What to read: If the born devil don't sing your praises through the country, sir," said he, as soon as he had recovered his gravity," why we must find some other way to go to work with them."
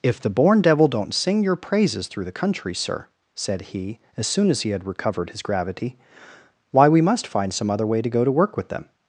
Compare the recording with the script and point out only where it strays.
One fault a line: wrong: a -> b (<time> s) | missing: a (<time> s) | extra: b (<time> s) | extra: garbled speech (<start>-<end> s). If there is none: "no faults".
no faults